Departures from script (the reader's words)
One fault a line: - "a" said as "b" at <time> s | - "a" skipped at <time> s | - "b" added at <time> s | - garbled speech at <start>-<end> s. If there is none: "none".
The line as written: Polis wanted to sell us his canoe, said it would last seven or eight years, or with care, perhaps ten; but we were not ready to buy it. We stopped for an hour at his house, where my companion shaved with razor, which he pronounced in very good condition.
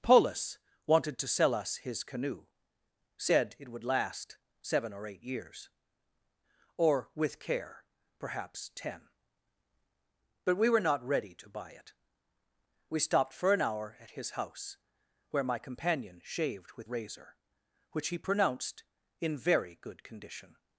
none